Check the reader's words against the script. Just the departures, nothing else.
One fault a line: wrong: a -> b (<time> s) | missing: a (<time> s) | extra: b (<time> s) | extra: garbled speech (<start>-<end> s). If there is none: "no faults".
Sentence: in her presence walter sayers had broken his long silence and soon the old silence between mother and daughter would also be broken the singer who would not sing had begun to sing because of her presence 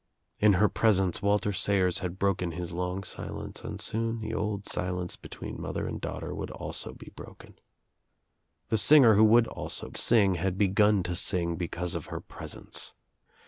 wrong: not -> also (9.5 s)